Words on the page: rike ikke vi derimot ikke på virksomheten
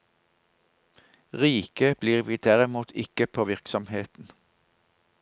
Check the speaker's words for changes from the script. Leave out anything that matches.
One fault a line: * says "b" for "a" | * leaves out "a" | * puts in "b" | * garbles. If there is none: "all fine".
* says "blir" for "ikke"